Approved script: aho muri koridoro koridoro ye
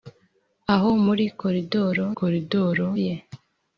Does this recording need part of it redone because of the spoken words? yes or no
no